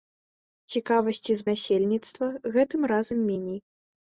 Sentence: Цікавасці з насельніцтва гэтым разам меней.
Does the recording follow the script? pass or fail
pass